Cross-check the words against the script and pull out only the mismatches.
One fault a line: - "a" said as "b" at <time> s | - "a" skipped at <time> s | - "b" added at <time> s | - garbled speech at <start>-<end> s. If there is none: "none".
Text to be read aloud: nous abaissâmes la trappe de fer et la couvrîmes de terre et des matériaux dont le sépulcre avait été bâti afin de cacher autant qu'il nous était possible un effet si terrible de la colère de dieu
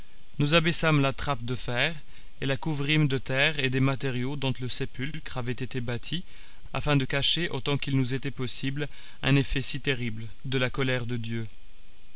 none